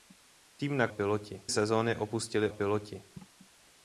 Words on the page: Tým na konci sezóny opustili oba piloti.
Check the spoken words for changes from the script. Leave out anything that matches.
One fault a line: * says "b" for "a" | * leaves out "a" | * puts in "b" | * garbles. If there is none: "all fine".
* says "piloti" for "konci"
* leaves out "oba"